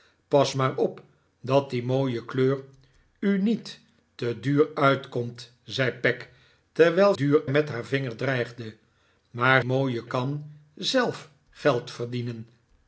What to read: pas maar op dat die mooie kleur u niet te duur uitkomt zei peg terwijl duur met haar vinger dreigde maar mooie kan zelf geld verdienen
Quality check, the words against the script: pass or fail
pass